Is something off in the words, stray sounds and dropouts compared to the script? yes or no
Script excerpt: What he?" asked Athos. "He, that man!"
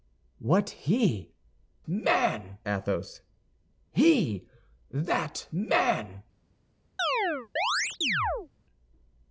yes